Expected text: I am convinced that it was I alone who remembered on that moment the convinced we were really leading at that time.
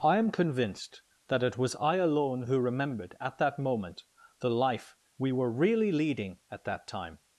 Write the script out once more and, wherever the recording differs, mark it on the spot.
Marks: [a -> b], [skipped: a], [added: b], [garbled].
I am convinced that it was I alone who remembered [on -> at] that moment the [convinced -> life] we were really leading at that time.